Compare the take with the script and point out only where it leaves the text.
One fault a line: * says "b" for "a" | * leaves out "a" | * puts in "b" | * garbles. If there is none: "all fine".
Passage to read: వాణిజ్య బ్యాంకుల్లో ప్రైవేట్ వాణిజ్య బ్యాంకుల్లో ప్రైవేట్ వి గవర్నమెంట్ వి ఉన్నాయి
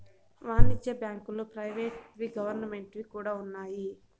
* leaves out "వాణిజ్య బ్యాంకుల్లో ప్రైవేట్"
* puts in "కూడా"